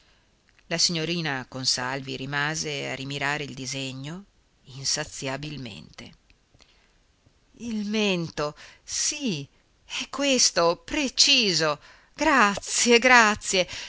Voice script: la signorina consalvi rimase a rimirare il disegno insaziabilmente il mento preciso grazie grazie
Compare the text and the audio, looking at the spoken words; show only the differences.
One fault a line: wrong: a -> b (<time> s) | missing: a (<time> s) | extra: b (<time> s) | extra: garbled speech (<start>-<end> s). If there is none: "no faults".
extra: sì è questo (8.8 s)